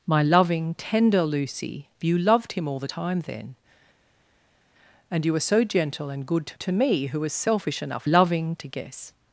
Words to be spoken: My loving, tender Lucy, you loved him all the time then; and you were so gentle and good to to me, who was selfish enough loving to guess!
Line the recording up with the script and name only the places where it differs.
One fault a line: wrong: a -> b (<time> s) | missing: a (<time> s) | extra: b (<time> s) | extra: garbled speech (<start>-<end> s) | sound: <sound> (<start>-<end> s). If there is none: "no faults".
no faults